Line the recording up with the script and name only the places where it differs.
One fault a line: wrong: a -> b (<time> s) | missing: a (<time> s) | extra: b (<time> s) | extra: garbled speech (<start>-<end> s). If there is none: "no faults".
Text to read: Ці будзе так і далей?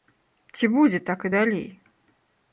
no faults